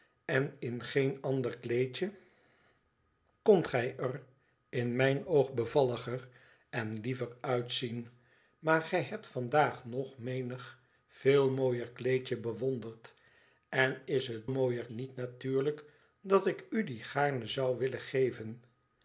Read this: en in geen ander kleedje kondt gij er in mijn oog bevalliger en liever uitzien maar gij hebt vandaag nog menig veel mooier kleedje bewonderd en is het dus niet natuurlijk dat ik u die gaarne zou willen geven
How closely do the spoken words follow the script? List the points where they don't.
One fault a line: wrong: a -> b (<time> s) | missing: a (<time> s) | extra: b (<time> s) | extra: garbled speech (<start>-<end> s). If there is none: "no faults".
wrong: dus -> mooier (14.5 s)